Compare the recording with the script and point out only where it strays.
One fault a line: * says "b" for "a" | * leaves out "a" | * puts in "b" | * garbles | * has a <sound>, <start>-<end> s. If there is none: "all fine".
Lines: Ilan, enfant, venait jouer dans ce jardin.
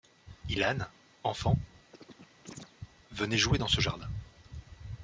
* has a chirp, 1.9-2.7 s